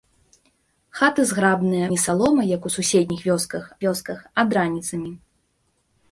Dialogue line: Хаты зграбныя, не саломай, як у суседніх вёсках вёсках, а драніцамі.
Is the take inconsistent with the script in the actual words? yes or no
no